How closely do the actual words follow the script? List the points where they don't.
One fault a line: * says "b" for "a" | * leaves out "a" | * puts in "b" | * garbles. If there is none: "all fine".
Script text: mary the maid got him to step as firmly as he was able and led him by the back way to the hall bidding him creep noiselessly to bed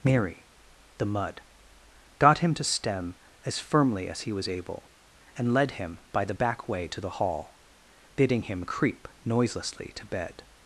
* says "mud" for "maid"
* says "stem" for "step"